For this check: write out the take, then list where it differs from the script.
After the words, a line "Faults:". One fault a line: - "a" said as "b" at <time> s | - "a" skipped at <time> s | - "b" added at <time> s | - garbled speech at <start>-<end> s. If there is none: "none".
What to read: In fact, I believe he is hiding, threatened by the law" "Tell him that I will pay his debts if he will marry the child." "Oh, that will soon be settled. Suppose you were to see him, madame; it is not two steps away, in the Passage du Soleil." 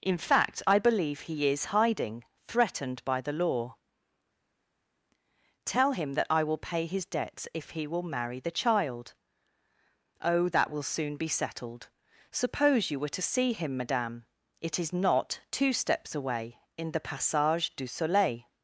In fact, I believe he is hiding, threatened by the law" "Tell him that I will pay his debts if he will marry the child." "Oh, that will soon be settled. Suppose you were to see him, madame; it is not two steps away, in the Passage du Soleil."
Faults:
none